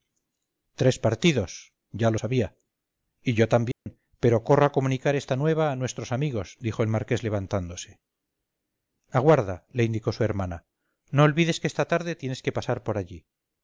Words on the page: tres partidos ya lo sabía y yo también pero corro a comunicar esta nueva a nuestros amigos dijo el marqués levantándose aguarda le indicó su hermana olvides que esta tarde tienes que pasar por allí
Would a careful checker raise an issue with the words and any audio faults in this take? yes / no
yes